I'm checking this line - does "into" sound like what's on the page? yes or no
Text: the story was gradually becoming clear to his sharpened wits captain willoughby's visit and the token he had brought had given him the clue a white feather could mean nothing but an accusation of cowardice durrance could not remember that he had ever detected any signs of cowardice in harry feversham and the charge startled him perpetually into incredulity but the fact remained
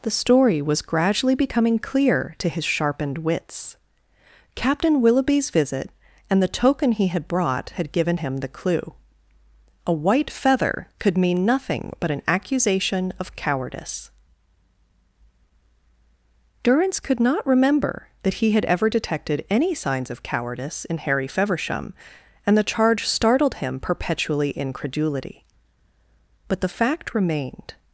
no